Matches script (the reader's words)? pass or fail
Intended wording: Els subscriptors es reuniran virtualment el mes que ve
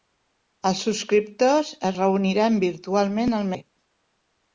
fail